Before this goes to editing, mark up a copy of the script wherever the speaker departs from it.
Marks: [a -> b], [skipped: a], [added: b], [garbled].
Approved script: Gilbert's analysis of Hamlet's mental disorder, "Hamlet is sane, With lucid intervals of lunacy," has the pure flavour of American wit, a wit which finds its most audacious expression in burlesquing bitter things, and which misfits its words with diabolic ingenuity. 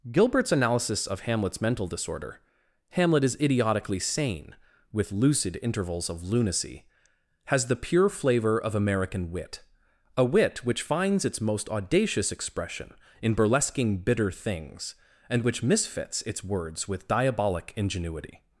Gilbert's analysis of Hamlet's mental disorder, "Hamlet is [added: idiotically] sane, With lucid intervals of lunacy," has the pure flavour of American wit, a wit which finds its most audacious expression in burlesquing bitter things, and which misfits its words with diabolic ingenuity.